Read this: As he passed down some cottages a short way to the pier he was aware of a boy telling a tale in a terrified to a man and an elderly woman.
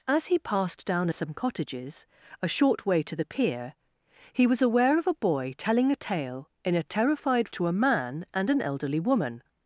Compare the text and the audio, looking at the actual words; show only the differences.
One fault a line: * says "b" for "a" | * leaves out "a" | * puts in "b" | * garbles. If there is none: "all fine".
all fine